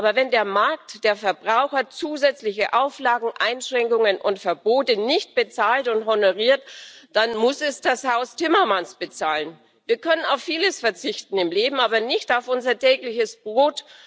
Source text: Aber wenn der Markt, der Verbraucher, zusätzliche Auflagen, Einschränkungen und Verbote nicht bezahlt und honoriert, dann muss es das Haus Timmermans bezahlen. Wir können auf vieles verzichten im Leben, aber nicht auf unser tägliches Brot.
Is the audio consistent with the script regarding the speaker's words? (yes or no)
yes